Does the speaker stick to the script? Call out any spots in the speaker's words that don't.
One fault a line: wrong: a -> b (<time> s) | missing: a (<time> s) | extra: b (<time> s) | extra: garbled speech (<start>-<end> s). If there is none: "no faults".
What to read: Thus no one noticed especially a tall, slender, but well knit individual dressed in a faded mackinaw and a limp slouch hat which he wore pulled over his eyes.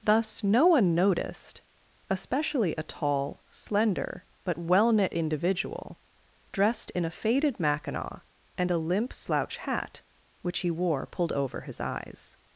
no faults